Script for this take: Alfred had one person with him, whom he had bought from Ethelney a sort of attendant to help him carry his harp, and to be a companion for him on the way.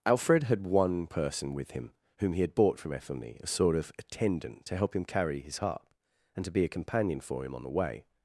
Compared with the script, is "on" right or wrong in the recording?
right